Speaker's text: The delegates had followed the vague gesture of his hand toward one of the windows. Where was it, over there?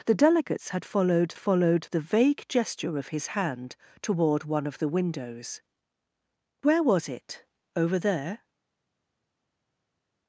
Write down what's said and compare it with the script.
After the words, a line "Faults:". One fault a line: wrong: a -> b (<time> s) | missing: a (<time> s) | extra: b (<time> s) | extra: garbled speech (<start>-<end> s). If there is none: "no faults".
The delegates had followed followed the vague gesture of his hand toward one of the windows. Where was it, over there?
Faults:
extra: followed (1.4 s)